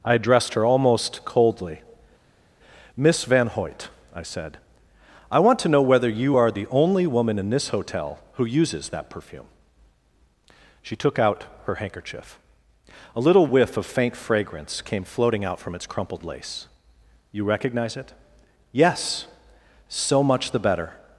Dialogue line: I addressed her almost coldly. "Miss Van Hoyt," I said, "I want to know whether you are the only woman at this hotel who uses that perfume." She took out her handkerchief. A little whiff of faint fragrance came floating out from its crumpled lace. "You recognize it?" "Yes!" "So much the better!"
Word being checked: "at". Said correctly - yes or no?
no